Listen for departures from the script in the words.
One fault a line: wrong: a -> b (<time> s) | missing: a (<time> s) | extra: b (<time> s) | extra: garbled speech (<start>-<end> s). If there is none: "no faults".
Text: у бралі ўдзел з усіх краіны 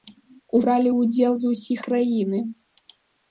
no faults